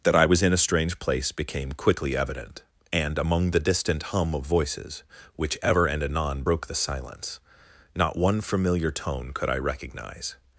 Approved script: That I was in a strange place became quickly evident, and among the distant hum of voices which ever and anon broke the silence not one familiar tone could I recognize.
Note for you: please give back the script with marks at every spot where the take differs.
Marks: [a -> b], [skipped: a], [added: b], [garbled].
That I was in a strange place became quickly evident, and among the distant hum of voices which ever and anon broke the silence not one familiar tone could I recognize.